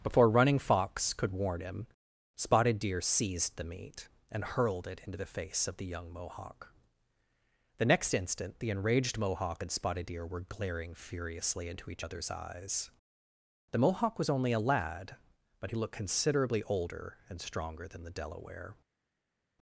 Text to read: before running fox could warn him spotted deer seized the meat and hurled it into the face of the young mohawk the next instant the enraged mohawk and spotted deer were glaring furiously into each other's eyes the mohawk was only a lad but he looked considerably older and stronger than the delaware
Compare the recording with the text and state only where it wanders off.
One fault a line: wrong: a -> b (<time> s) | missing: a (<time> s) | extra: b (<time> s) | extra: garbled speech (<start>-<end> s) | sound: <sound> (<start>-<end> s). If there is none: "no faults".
no faults